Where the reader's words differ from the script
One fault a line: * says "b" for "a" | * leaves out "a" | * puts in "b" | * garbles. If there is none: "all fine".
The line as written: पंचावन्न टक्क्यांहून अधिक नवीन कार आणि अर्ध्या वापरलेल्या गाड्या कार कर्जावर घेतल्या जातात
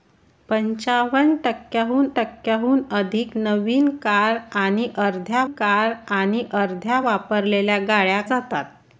* puts in "टक्क्यांहून"
* says "कार आणि अर्ध्या वापरलेल्या गाड्या" for "वापरलेल्या गाड्या कार कर्जावर घेतल्या"